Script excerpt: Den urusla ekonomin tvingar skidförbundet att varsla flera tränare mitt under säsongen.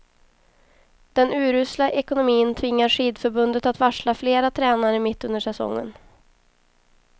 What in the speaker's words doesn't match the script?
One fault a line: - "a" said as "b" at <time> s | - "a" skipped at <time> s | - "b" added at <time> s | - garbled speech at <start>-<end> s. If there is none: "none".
none